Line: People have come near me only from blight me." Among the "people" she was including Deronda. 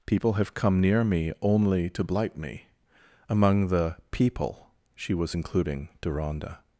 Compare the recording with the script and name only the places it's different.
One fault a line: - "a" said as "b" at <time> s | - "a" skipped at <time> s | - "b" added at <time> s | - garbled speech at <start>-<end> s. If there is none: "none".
- "from" said as "to" at 1.9 s